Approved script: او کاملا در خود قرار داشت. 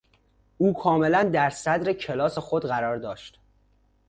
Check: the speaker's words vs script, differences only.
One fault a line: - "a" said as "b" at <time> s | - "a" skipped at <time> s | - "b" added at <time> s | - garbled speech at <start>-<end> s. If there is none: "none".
- "صدر کلاس" added at 1.5 s